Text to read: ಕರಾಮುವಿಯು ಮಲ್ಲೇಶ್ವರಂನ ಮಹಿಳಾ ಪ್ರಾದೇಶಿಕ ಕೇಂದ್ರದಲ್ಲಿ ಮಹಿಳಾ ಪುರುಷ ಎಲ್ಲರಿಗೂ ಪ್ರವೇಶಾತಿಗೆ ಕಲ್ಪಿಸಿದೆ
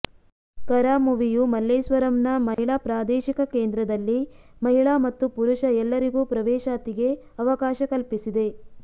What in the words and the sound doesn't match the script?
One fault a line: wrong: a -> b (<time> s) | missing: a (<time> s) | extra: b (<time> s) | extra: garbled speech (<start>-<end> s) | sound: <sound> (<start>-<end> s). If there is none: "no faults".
sound: dropout (2.5-2.6 s)
extra: ಮತ್ತು (5.0 s)
extra: ಅವಕಾಶ (7.4 s)